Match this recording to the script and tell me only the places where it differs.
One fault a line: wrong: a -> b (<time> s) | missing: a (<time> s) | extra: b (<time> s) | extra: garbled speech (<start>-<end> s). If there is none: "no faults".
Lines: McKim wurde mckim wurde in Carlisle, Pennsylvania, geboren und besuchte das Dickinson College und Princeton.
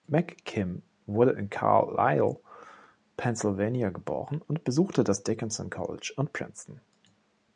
missing: mckim wurde (1.3 s)